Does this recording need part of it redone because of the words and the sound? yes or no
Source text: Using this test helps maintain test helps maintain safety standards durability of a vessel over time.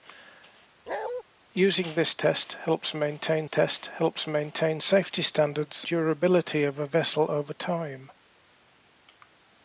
yes